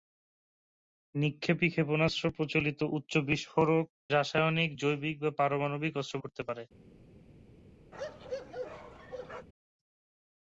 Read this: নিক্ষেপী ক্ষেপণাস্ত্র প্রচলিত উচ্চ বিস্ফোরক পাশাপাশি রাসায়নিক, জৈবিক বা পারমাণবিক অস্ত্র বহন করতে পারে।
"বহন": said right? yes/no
no